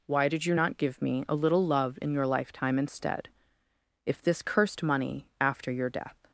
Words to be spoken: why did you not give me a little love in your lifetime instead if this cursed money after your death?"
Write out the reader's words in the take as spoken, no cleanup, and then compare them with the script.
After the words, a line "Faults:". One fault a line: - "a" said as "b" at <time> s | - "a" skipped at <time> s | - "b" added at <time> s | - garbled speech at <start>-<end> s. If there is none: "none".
why did you not give me a little love in your lifetime instead if this cursed money after your death?"
Faults:
none